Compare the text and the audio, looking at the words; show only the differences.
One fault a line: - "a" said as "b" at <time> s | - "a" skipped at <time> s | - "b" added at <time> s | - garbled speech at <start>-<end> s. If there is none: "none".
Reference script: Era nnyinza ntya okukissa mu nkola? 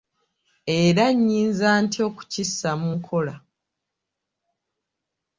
none